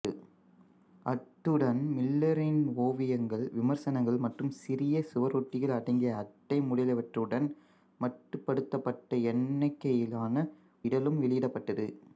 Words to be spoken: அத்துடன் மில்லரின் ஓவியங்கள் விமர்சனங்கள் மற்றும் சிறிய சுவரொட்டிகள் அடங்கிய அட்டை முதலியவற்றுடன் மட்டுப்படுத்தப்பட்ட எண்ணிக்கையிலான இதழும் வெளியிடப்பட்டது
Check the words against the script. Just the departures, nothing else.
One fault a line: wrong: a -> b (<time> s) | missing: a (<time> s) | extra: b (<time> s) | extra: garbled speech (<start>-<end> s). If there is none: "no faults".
no faults